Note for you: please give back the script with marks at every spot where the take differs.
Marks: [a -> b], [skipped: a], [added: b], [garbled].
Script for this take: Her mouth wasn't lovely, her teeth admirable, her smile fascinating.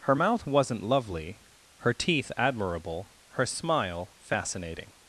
Her mouth wasn't lovely, her teeth admirable, her smile fascinating.